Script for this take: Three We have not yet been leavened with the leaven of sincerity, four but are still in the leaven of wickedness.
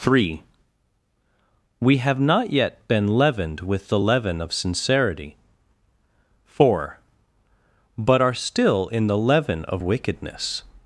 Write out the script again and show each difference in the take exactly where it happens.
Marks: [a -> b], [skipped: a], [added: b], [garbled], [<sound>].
Three We have not yet been leavened with the leaven of sincerity, four but are still in the leaven of wickedness.